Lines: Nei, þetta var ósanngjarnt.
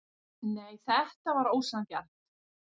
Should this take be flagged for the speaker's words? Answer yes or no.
no